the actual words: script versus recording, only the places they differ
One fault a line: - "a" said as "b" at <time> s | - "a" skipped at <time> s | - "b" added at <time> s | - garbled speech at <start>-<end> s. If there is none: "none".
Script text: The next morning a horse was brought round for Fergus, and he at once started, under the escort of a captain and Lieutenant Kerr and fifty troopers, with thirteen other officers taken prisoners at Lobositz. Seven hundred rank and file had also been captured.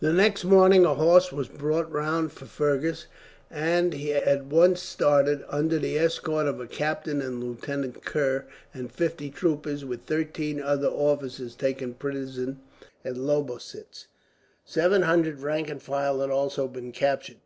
none